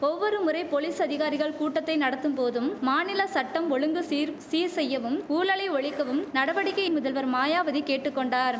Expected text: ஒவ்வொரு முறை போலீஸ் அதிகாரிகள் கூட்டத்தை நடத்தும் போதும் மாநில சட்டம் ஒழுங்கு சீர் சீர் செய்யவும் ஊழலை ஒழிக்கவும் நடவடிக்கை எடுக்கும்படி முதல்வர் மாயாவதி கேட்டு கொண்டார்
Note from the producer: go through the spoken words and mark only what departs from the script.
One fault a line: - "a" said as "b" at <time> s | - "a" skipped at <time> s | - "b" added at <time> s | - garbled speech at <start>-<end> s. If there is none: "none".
- "எடுக்கும்படி" skipped at 6.8 s